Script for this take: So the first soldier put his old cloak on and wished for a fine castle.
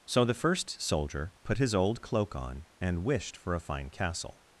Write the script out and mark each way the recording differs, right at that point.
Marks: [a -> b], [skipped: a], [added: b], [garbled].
So the first soldier put his old cloak on and wished for a fine castle.